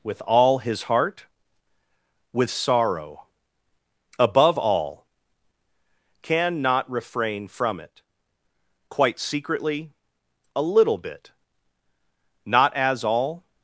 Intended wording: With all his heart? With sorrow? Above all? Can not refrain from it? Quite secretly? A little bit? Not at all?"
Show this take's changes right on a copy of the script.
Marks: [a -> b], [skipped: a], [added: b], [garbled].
With all his heart? With sorrow? Above all? Can not refrain from it? Quite secretly? A little bit? Not [at -> as] all?"